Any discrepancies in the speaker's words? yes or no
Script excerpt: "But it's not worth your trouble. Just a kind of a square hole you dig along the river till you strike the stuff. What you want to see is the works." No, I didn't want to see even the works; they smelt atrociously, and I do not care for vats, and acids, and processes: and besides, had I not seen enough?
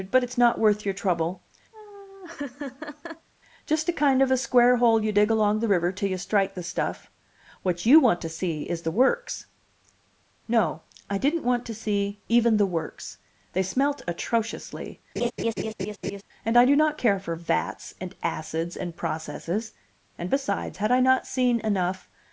no